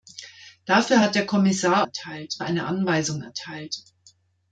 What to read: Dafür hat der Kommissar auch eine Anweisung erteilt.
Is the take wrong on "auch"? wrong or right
wrong